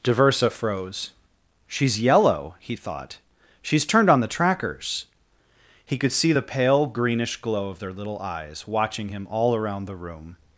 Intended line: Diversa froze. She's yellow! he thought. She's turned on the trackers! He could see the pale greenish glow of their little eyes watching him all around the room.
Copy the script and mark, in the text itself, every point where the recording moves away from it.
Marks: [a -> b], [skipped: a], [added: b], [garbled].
Diversa froze. She's yellow! he thought. She's turned on the trackers! He could see the pale greenish glow of their little eyes watching him all around the room.